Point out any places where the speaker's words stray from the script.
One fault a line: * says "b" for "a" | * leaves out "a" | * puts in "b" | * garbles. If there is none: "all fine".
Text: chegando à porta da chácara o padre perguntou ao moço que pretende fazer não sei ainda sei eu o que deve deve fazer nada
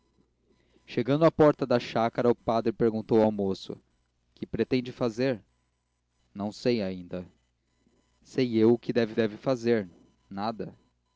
all fine